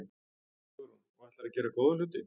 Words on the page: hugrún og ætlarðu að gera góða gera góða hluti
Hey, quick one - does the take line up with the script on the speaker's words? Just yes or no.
no